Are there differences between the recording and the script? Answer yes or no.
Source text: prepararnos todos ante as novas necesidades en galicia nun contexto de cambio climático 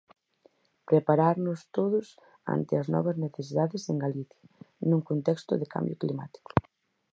no